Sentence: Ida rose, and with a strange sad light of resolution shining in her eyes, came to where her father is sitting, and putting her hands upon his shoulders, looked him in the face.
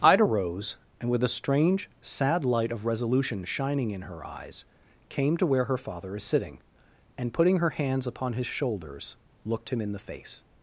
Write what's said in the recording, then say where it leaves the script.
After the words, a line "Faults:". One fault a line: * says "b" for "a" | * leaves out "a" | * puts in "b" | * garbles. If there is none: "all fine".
Ida rose, and with a strange sad light of resolution shining in her eyes, came to where her father is sitting, and putting her hands upon his shoulders, looked him in the face.
Faults:
all fine